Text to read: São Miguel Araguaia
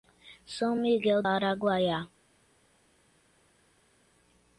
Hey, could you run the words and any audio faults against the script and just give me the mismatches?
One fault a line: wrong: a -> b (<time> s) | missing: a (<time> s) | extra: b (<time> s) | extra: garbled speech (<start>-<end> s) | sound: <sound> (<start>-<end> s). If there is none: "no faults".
no faults